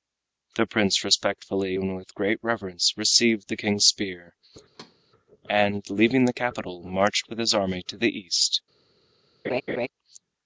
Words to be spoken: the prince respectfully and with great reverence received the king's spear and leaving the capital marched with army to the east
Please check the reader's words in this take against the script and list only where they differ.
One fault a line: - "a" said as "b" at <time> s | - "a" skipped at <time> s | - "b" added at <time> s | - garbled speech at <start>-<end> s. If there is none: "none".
- "his" added at 7.4 s